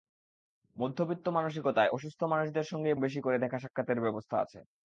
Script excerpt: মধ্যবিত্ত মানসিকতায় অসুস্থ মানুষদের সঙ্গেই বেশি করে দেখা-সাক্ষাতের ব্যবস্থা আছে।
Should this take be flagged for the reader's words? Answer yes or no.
no